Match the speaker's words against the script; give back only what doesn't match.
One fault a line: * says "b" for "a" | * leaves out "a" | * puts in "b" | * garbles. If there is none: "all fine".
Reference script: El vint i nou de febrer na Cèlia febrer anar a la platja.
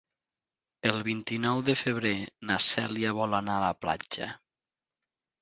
* says "vol" for "febrer"